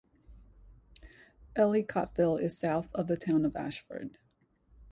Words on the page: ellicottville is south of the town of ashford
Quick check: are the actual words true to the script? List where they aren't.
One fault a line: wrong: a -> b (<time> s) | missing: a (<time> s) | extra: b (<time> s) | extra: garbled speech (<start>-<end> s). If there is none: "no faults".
no faults